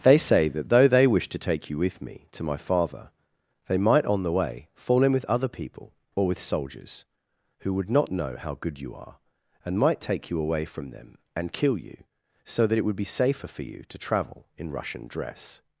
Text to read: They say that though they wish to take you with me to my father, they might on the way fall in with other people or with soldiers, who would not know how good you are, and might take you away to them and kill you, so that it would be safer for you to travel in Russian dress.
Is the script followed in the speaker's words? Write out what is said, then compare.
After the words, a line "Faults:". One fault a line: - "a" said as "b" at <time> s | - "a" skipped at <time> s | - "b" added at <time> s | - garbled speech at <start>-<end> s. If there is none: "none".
They say that though they wish to take you with me to my father, they might on the way fall in with other people or with soldiers, who would not know how good you are, and might take you away from them and kill you, so that it would be safer for you to travel in Russian dress.
Faults:
- "to" said as "from" at 10.7 s